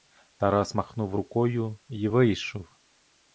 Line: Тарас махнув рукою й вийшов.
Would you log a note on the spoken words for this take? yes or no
no